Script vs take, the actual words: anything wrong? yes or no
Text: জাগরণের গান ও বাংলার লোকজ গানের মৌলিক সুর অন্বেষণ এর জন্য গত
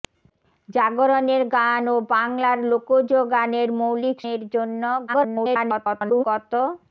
yes